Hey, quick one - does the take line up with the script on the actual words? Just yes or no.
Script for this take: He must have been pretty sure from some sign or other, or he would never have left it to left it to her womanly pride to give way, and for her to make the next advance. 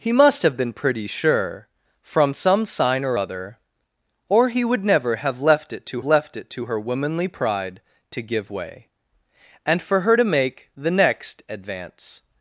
yes